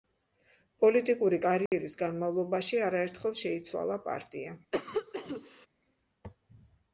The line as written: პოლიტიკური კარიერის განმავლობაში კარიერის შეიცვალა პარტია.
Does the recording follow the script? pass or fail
fail